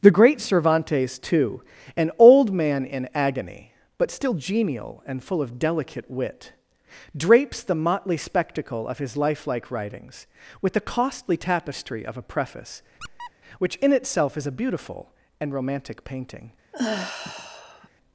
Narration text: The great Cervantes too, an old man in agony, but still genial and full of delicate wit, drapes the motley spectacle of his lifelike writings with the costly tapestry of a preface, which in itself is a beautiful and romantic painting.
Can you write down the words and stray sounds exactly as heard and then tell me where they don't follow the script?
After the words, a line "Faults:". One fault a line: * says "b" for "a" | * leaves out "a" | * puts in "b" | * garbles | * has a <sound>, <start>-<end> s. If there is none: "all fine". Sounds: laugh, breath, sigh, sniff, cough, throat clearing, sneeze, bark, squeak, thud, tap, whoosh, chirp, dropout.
The great Cervantes too, an old man in agony, but still genial and full of delicate wit, drapes the motley spectacle of his lifelike writings with the costly tapestry of a preface, which in itself is a beautiful and romantic painting.
Faults:
* has a squeak, 13.0-13.3 s
* has a sigh, 16.7-17.9 s